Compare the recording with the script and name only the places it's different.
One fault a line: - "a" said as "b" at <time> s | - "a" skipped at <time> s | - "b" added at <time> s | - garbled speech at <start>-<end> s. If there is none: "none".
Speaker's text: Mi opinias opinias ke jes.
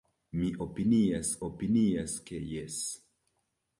none